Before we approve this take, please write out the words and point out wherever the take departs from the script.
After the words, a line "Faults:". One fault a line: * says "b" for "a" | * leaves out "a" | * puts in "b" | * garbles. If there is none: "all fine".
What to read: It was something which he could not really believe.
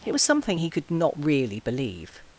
It was something he could not really believe.
Faults:
* leaves out "which"